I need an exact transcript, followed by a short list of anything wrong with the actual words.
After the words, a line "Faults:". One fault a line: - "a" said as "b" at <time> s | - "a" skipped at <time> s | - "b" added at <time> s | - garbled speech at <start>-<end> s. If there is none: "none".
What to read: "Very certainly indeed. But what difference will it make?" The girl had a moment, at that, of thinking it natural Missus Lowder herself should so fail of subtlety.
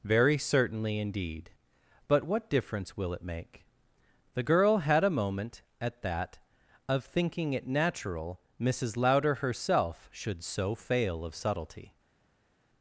"Very certainly indeed. But what difference will it make?" The girl had a moment, at that, of thinking it natural Missus Lowder herself should so fail of subtlety.
Faults:
none